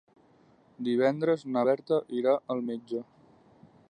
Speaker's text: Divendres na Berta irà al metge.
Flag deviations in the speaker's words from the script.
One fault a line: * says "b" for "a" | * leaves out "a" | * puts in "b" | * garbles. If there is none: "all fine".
all fine